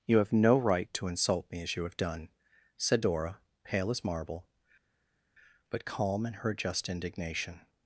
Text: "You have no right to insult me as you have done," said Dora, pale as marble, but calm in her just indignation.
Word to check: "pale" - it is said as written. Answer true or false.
true